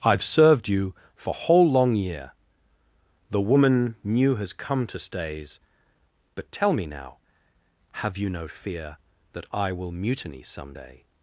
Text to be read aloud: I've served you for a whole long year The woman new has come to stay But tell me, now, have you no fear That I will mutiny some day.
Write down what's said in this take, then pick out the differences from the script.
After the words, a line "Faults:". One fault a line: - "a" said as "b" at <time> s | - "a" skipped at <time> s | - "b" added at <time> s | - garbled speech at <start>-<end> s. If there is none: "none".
I've served you for whole long year The woman new has come to stays But tell me, now, have you no fear That I will mutiny some day.
Faults:
- "a" skipped at 1.3 s
- "stay" said as "stays" at 5.0 s